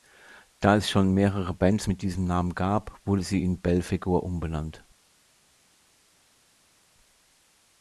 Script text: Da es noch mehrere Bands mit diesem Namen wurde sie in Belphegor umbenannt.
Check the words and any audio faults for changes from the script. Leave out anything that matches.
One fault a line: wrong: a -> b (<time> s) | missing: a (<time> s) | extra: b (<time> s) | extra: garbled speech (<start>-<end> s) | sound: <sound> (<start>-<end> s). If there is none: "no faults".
wrong: noch -> schon (0.9 s)
extra: gab (2.5 s)